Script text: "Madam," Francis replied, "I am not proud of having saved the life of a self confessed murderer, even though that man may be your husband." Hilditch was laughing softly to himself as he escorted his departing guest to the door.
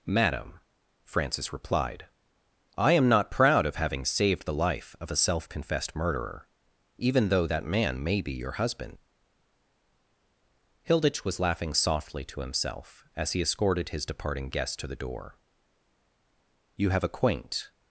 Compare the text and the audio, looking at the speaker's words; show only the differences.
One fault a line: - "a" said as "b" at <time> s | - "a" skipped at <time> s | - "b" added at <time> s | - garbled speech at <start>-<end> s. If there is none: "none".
- "You have a quaint" added at 16.8 s